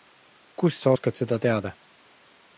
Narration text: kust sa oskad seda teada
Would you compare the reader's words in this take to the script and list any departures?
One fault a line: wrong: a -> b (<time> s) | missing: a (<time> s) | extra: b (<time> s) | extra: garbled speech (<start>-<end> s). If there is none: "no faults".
no faults